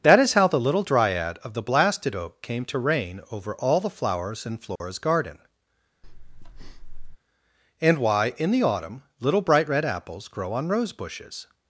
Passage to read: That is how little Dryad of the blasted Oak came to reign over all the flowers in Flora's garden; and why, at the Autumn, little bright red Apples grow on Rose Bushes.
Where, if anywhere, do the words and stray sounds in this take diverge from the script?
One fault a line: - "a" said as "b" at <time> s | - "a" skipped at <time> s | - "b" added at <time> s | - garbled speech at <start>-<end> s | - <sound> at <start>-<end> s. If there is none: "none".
- "the" added at 0.5 s
- dropout at 4.8-4.8 s
- breath at 6.0-7.2 s
- "at" said as "in" at 8.4 s